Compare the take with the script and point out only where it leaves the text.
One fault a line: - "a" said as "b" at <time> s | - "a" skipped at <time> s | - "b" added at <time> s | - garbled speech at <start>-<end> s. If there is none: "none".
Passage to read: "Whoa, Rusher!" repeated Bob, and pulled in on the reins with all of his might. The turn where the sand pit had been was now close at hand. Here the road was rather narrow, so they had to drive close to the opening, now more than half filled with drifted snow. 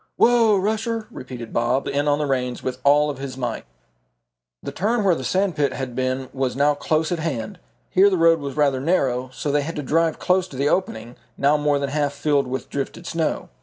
- "and pulled" skipped at 1.9 s